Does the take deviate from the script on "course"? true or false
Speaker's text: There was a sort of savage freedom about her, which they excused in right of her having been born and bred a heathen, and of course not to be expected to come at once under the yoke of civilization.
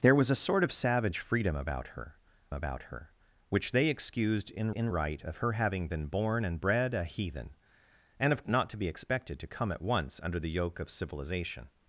true